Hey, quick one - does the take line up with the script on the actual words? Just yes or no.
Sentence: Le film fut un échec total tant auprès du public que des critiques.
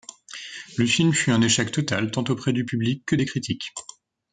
yes